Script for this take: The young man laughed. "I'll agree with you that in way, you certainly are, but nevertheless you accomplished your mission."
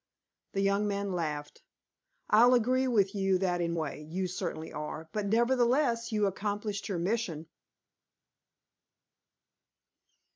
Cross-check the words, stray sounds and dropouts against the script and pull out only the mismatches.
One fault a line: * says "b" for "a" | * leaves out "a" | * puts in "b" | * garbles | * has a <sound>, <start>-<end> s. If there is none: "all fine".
all fine